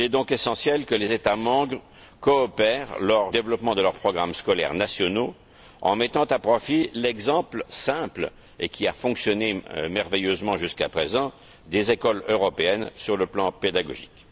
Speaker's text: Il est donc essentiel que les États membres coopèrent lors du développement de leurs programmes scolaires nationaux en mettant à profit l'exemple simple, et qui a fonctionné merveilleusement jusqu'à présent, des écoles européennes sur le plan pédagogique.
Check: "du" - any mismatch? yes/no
yes